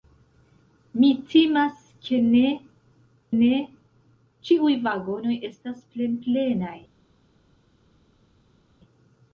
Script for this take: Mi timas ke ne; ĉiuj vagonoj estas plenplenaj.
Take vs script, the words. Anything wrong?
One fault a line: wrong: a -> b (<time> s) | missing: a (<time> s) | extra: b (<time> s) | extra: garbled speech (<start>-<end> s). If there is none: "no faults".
extra: ne (3.4 s)